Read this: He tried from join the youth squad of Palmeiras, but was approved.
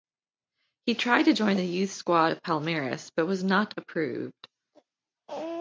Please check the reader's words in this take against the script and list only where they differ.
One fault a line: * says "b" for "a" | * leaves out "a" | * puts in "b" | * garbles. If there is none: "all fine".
* says "to" for "from"
* puts in "not"